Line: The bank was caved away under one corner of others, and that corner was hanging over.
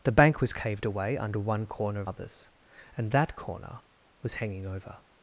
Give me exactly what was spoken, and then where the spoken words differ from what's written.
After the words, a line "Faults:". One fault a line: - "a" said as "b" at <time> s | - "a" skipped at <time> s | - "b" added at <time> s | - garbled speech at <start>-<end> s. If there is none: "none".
The bank was caved away under one corner of others, and that corner was hanging over.
Faults:
none